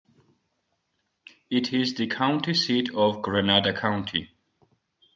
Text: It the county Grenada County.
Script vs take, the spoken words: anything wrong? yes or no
yes